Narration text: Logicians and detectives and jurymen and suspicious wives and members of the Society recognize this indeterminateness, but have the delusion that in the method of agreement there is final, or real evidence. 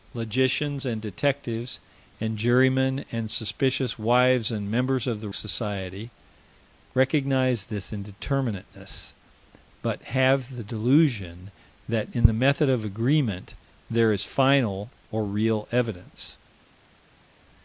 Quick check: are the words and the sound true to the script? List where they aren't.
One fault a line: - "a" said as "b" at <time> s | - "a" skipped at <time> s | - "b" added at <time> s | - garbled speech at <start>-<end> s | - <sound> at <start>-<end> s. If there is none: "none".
none